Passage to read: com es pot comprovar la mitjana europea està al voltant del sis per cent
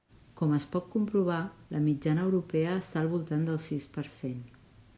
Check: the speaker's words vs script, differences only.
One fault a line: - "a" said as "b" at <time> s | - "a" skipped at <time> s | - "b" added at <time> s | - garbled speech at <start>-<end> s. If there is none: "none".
none